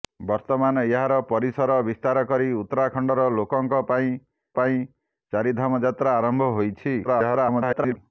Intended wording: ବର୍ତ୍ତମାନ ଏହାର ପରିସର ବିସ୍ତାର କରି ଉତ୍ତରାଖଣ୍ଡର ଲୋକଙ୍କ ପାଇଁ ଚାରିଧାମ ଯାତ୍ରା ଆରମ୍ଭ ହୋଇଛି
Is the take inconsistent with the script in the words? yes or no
yes